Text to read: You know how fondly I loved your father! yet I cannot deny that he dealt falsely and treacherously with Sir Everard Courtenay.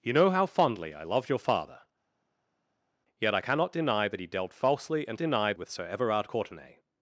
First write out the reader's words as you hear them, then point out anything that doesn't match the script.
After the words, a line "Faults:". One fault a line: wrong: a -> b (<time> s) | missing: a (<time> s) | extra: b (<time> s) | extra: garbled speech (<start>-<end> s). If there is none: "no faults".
You know how fondly I loved your father! yet I cannot deny that he dealt falsely and deny with Sir Everard Courtenay.
Faults:
wrong: treacherously -> deny (5.2 s)